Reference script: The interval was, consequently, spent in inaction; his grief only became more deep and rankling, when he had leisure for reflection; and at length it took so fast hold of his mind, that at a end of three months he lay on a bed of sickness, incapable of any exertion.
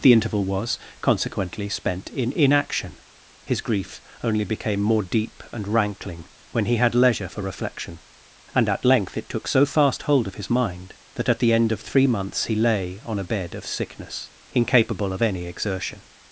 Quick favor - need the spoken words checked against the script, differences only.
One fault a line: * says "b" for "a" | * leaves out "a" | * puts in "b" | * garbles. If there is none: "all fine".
* says "the" for "a"